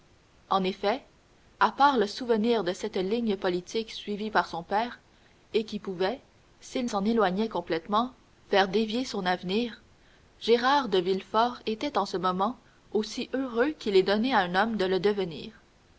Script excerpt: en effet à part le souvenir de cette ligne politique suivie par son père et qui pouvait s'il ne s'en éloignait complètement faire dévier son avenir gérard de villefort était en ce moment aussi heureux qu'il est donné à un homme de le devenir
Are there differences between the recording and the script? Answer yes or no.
yes